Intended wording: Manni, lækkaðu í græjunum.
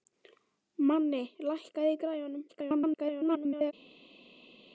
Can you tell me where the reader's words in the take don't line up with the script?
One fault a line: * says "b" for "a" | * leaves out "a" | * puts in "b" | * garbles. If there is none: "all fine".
* garbles